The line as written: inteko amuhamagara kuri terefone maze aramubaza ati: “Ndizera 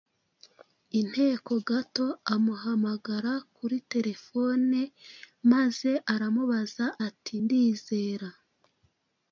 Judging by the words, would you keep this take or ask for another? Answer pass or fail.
fail